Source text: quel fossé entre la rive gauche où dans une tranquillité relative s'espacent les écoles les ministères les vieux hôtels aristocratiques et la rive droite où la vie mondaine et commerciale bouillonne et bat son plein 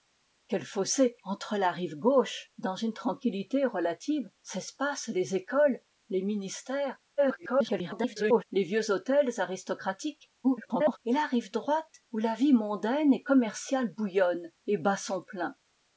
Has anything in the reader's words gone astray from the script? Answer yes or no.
yes